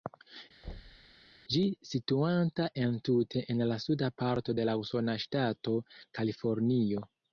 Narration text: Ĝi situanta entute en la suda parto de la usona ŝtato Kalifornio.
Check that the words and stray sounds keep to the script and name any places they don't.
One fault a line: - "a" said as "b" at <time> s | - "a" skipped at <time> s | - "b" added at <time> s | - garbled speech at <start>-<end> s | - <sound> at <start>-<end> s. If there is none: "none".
- thud at 0.6-1.1 s